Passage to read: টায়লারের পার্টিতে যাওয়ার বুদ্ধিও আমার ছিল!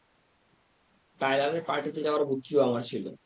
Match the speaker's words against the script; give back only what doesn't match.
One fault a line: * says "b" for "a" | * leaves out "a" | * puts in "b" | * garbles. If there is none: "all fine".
all fine